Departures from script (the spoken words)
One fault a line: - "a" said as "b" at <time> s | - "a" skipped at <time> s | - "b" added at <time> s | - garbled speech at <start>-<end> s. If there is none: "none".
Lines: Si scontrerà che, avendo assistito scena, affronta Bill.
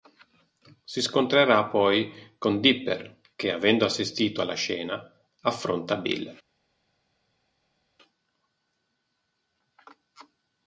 - "poi con Dipper" added at 1.6 s
- "alla" added at 4.4 s